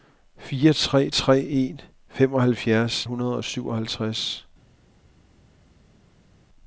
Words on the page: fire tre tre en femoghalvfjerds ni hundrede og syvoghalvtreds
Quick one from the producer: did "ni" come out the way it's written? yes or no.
no